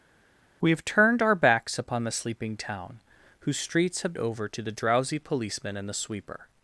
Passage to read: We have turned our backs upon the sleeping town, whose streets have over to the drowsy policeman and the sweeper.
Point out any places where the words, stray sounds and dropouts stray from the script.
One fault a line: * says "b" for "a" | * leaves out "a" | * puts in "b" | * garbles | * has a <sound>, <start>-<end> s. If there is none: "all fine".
all fine